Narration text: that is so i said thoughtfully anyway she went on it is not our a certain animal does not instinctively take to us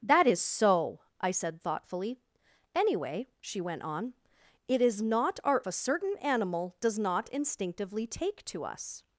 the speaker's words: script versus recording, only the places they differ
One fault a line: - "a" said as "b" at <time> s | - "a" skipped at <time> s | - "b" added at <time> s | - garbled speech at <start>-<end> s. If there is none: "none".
none